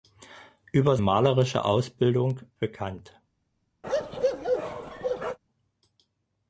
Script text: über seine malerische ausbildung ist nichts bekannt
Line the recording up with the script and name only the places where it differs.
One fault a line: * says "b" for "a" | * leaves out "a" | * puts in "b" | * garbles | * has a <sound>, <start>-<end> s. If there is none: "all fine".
* leaves out "seine"
* leaves out "ist nichts"
* has a bark, 3.8-5.4 s